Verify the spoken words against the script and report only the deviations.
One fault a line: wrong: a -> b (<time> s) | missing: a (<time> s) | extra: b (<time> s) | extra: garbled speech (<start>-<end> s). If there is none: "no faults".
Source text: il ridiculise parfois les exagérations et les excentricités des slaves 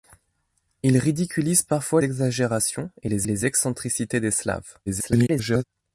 missing: les (2.0 s)
extra: les (3.3 s)
extra: garbled speech (4.9-5.6 s)